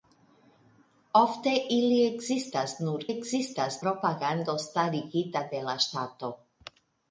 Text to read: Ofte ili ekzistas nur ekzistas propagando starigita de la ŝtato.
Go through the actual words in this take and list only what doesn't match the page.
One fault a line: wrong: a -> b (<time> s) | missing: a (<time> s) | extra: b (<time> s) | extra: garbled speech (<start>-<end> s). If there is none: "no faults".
no faults